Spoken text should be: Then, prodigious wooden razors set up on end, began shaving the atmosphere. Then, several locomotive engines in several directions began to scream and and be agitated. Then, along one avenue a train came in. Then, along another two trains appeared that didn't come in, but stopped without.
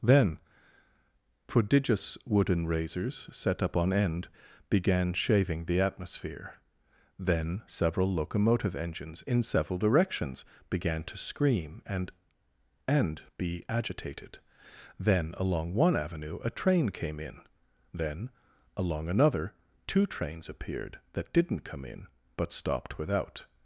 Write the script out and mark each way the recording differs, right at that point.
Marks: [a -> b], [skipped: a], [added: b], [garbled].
Then, prodigious wooden razors set up on end, began shaving the atmosphere. Then, several locomotive engines in several directions began to scream and and be agitated. Then, along one avenue a train came in. Then, along another two trains appeared that didn't come in, but stopped without.